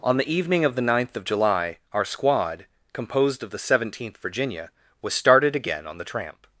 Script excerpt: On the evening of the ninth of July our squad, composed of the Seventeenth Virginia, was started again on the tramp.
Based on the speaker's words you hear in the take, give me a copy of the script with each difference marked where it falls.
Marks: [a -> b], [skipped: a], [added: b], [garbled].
On the evening of the ninth of July our squad, composed of the Seventeenth Virginia, was started again on the tramp.